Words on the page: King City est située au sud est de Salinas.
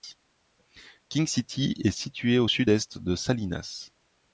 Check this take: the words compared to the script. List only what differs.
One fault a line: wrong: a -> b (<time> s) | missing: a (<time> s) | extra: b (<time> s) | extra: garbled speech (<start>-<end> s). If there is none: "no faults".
no faults